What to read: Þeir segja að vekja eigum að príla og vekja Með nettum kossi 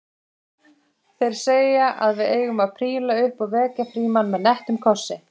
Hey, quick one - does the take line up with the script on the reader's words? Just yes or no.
no